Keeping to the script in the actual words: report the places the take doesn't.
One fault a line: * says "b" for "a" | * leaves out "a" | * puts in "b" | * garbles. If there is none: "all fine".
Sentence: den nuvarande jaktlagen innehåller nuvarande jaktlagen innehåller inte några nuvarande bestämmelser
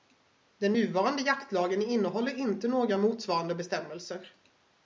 * leaves out "nuvarande jaktlagen innehåller"
* says "motsvarande" for "nuvarande"